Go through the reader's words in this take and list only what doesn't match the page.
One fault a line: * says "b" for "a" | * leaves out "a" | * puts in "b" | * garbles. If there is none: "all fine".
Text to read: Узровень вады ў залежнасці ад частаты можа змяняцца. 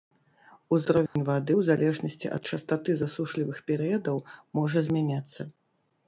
* puts in "засушлівых перыядаў"